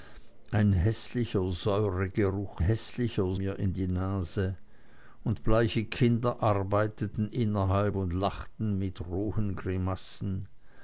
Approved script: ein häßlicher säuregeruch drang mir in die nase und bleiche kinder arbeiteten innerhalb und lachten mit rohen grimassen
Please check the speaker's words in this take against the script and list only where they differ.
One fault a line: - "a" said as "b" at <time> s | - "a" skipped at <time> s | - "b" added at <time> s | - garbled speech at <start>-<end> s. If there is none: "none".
- "drang" said as "häßlicher" at 2.6 s